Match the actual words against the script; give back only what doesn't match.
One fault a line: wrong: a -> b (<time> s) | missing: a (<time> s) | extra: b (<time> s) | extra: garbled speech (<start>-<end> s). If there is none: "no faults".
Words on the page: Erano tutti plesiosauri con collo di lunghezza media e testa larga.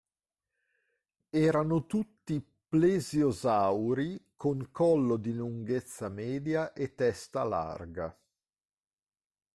no faults